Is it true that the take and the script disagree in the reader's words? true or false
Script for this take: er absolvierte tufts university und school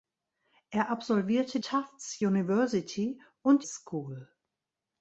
false